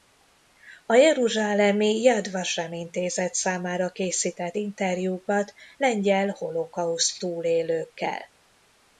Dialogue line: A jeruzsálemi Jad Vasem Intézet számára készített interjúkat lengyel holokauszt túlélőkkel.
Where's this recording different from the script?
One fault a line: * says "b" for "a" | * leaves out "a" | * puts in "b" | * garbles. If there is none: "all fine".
all fine